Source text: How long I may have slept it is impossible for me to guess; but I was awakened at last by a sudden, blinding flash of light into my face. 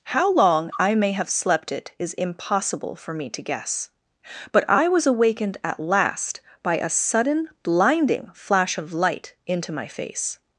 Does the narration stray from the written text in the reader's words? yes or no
no